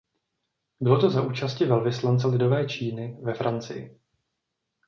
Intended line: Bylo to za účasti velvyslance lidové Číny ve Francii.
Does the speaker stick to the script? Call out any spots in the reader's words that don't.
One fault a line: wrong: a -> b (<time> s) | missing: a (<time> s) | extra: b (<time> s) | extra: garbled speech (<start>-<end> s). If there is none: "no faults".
no faults